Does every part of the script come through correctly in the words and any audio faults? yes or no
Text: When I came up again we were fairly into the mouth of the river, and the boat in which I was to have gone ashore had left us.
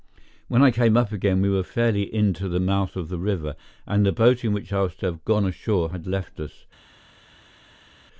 yes